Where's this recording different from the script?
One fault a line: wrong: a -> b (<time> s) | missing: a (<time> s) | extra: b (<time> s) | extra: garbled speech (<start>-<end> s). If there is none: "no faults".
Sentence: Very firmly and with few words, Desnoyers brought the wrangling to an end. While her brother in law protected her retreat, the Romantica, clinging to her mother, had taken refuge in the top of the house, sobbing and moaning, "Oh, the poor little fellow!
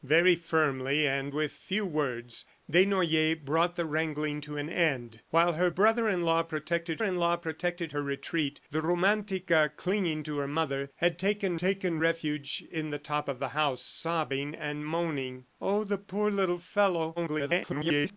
extra: in law protected (7.0 s)
extra: taken (11.6 s)
extra: garbled speech (17.2-18.2 s)